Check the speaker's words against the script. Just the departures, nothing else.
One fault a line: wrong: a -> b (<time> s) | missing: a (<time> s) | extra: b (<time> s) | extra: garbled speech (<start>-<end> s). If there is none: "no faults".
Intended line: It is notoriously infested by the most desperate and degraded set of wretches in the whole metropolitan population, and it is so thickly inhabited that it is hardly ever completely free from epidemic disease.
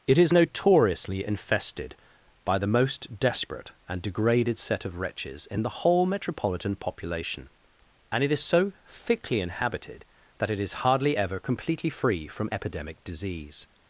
no faults